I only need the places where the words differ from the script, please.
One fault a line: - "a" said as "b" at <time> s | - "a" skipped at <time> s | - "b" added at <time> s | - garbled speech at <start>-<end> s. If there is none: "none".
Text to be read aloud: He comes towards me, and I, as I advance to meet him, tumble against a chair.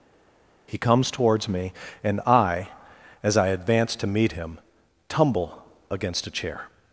none